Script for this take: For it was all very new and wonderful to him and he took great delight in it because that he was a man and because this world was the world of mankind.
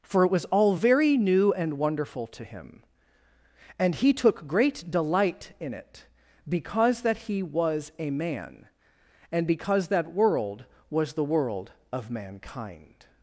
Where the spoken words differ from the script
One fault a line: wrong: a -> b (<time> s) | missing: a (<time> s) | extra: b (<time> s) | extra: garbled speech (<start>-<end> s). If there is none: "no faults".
wrong: this -> that (9.9 s)